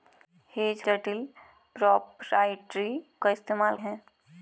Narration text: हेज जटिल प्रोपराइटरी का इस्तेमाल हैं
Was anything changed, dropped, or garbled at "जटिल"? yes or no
no